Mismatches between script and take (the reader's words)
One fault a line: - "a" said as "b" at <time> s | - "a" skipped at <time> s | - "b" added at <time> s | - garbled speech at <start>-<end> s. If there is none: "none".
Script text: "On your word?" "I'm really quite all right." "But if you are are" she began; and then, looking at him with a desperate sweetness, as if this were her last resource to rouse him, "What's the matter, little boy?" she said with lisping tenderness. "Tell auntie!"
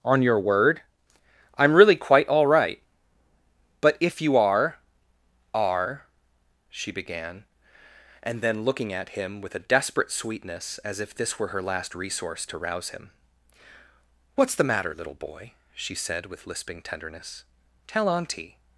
none